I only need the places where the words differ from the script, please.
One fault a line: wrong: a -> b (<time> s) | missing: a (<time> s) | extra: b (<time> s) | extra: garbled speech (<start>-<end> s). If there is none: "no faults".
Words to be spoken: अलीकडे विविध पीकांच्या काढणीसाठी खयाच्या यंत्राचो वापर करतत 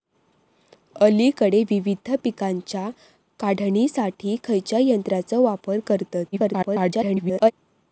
extra: garbled speech (6.3-7.5 s)